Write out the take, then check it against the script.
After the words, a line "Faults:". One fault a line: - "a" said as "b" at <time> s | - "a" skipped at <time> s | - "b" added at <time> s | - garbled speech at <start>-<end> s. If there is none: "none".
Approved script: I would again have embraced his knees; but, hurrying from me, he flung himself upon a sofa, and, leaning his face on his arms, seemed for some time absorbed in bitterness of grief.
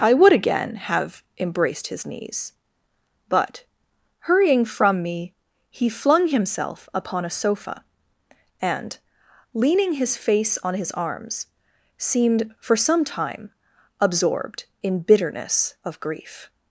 I would again have embraced his knees; but, hurrying from me, he flung himself upon a sofa, and, leaning his face on his arms, seemed for some time absorbed in bitterness of grief.
Faults:
none